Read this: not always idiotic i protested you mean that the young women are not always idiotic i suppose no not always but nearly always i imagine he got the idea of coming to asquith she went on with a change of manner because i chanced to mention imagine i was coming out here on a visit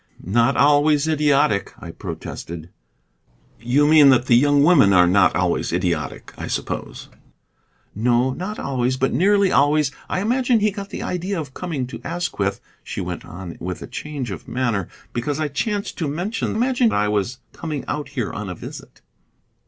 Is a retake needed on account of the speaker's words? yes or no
no